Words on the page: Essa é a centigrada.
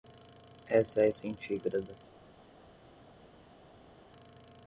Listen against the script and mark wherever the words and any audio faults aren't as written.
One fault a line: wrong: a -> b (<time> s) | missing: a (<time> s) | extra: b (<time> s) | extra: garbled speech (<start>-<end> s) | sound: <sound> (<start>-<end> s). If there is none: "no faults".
no faults